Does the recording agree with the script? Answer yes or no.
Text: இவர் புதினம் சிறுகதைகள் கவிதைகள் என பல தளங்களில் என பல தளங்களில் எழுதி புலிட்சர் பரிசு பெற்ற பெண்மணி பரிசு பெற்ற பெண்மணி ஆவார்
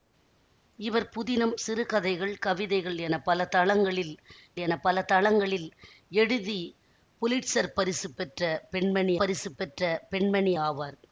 yes